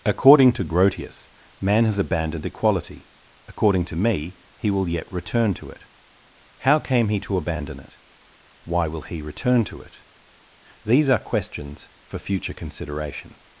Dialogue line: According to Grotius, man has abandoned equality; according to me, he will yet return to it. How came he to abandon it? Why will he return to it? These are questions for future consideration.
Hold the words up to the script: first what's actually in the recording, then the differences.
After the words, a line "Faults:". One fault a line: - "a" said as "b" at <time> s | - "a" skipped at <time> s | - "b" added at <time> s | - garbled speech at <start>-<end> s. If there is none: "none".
According to Grotius, man has abandoned equality; according to me, he will yet return to it. How came he to abandon it? Why will he return to it? These are questions for future consideration.
Faults:
none